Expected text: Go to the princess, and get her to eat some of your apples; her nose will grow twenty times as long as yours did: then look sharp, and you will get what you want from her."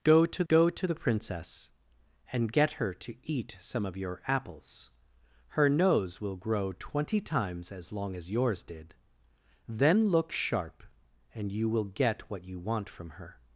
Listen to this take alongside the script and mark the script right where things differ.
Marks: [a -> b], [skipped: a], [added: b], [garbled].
Go to [added: go to] the princess, and get her to eat some of your apples; her nose will grow twenty times as long as yours did: then look sharp, and you will get what you want from her."